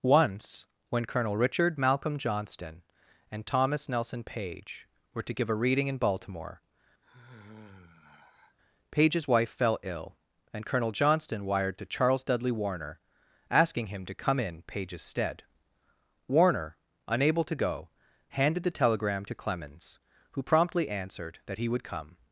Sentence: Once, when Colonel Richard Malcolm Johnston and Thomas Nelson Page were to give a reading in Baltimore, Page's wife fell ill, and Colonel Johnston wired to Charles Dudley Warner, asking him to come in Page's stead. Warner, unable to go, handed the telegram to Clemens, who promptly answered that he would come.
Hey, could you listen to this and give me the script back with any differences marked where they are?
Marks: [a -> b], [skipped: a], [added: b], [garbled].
Once, when Colonel Richard Malcolm Johnston and Thomas Nelson Page were to give a reading in Baltimore, Page's wife fell ill, and Colonel Johnston wired to Charles Dudley Warner, asking him to come in Page's stead. Warner, unable to go, handed the telegram to Clemens, who promptly answered that he would come.